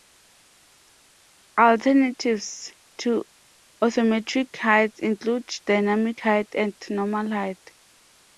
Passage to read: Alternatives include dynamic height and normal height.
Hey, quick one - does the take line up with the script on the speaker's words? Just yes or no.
no